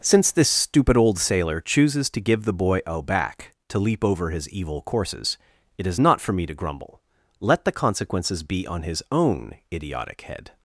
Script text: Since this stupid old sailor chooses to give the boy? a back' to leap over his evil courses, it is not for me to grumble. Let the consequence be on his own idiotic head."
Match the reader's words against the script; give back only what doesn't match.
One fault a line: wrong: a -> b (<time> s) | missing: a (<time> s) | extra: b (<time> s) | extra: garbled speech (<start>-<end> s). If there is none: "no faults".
wrong: consequence -> consequences (7.7 s)